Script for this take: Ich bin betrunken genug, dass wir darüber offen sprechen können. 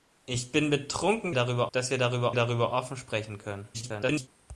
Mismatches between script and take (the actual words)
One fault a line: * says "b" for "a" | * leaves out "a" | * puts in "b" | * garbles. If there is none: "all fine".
* says "darüber" for "genug"
* puts in "darüber"
* garbles